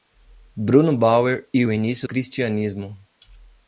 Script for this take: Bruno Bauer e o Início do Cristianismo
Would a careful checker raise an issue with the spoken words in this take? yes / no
yes